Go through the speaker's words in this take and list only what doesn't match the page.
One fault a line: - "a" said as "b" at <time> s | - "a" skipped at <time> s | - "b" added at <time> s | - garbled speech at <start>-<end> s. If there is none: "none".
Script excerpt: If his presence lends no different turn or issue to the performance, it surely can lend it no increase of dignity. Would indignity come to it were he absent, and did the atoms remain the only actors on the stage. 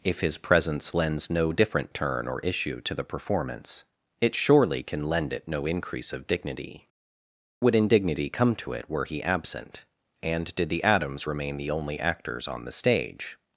none